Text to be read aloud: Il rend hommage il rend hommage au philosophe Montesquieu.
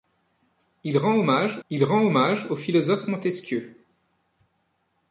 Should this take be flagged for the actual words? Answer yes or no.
no